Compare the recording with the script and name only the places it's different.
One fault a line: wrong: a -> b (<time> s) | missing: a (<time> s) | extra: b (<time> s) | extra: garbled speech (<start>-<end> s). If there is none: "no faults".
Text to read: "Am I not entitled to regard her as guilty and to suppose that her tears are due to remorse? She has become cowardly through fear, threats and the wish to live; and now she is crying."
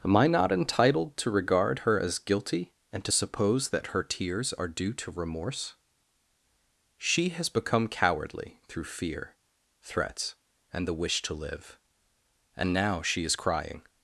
no faults